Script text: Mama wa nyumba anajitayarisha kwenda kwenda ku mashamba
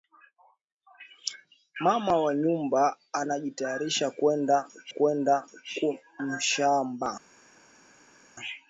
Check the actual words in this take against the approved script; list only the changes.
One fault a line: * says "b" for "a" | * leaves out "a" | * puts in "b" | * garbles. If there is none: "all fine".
all fine